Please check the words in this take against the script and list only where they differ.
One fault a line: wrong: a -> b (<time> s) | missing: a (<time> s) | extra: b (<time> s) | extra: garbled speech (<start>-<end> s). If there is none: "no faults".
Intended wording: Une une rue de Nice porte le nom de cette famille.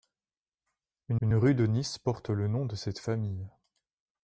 no faults